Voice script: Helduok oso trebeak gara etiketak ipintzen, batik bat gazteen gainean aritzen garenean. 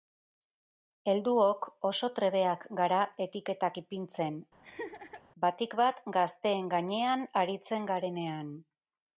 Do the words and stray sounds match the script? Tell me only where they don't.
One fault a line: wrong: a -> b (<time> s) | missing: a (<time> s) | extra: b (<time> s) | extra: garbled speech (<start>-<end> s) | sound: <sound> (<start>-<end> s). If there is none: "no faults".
sound: laugh (4.6-5.2 s)